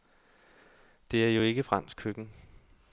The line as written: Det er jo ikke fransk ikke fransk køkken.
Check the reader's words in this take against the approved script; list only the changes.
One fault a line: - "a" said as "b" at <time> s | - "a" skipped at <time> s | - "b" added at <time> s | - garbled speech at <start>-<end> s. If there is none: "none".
- "ikke fransk" skipped at 2.0 s